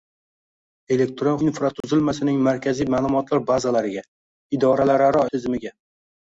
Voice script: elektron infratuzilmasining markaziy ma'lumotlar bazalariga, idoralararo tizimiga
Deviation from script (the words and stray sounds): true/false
true